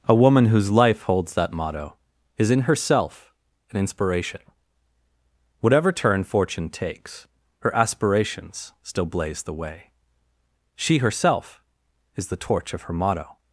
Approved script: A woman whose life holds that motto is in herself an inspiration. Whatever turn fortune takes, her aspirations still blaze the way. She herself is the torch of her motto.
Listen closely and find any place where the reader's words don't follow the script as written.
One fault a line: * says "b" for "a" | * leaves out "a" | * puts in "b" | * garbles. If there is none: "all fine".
all fine